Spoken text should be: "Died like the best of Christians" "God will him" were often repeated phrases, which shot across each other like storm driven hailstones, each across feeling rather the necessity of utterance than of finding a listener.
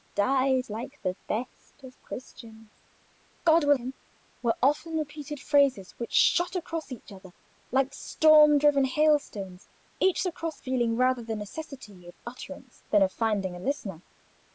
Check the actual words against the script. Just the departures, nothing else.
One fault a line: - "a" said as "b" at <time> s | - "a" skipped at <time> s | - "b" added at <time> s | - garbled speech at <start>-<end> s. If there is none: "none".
none